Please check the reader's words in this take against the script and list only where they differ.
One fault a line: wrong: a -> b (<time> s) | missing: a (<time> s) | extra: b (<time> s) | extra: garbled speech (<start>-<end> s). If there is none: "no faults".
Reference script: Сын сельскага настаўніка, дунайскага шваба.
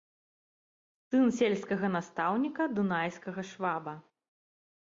no faults